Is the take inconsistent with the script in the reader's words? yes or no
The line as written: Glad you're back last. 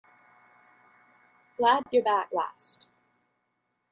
no